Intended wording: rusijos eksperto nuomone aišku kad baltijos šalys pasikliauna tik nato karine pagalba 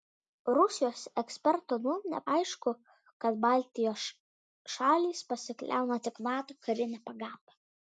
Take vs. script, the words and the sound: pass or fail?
pass